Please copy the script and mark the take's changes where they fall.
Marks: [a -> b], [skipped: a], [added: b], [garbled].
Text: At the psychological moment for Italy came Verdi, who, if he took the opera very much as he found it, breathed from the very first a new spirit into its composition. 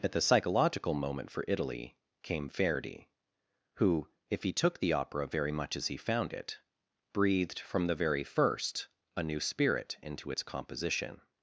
At the psychological moment for Italy came Verdi, who, if he took the opera very much as he found it, breathed from the very first a new spirit into its composition.